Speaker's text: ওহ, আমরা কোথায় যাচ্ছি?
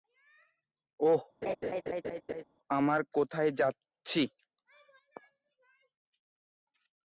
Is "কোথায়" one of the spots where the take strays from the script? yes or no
no